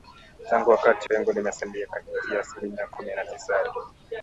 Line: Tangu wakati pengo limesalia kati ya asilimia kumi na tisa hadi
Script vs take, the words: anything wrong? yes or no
no